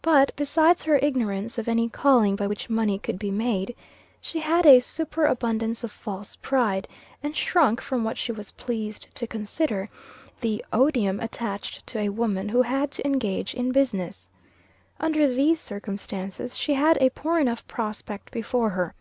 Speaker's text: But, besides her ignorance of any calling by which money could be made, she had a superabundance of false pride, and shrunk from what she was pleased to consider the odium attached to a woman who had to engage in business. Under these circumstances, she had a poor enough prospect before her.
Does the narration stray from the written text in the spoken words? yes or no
no